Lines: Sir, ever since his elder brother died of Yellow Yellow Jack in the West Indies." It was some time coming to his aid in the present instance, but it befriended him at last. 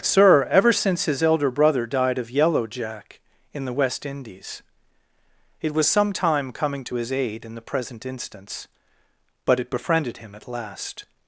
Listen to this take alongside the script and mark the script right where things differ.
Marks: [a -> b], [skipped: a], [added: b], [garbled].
Sir, ever since his elder brother died of Yellow [skipped: Yellow] Jack in the West Indies." It was some time coming to his aid in the present instance, but it befriended him at last.